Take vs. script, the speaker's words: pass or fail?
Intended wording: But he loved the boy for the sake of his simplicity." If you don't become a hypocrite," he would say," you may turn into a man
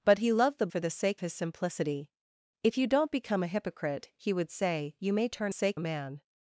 fail